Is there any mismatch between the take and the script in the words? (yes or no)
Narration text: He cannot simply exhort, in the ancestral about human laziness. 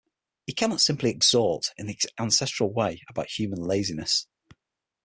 yes